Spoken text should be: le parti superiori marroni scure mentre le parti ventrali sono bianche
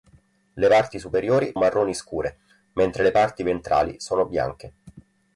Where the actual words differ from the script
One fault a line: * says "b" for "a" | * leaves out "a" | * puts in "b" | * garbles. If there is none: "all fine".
all fine